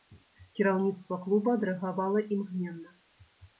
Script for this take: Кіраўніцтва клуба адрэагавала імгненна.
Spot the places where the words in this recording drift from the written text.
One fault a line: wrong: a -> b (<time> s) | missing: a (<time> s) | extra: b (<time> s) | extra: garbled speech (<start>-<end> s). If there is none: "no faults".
no faults